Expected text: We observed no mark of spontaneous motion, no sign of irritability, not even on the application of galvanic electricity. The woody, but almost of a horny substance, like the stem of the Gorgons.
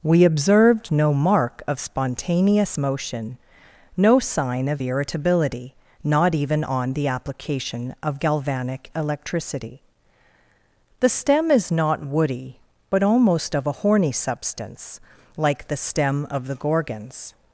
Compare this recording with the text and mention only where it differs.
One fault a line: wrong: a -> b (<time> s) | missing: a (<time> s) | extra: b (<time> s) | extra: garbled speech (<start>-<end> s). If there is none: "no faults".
extra: stem is not (11.1 s)